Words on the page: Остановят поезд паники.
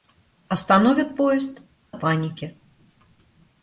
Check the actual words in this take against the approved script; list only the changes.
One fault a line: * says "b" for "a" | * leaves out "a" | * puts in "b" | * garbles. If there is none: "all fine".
all fine